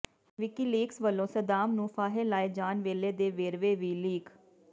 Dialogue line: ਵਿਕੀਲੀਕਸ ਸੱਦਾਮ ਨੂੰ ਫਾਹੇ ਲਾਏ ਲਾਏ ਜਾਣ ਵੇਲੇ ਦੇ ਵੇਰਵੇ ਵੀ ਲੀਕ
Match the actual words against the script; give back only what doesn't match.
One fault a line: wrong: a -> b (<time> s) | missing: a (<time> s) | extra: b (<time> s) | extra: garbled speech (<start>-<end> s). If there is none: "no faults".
extra: ਵੱਲੋਂ (1.0 s)
missing: ਲਾਏ (2.5 s)